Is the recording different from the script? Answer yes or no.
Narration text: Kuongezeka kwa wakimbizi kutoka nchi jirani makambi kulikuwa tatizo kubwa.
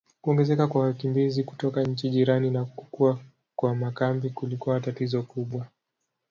yes